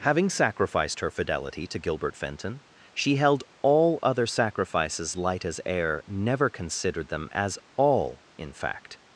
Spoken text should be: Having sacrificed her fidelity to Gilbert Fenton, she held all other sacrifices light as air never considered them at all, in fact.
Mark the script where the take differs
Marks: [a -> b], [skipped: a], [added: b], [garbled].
Having sacrificed her fidelity to Gilbert Fenton, she held all other sacrifices light as air never considered them [at -> as] all, in fact.